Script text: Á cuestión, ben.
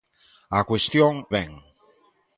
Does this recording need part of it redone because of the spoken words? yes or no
no